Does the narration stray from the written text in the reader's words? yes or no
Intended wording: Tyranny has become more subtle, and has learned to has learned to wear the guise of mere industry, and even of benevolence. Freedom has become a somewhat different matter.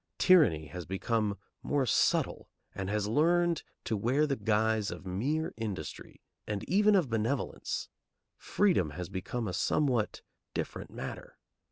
yes